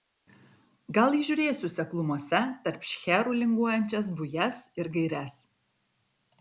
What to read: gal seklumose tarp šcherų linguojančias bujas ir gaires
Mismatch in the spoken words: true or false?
true